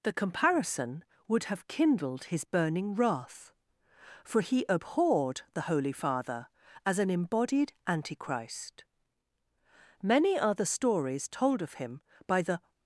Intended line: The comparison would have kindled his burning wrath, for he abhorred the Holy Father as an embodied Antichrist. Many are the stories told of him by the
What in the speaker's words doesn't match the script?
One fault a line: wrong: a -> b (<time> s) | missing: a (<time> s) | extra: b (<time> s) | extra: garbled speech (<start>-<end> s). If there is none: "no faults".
no faults